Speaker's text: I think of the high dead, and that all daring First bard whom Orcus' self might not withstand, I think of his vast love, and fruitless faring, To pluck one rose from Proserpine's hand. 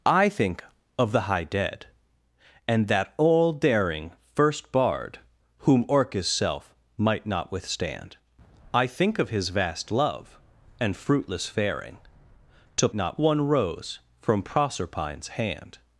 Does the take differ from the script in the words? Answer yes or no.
yes